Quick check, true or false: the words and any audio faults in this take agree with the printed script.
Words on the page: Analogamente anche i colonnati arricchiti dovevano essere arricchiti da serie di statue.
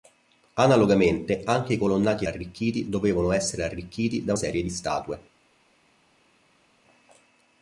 true